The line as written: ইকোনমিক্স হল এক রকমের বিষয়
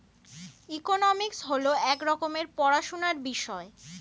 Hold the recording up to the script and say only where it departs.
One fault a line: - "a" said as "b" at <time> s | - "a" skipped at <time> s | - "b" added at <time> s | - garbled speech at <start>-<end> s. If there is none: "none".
- "পড়াশোনার" added at 2.6 s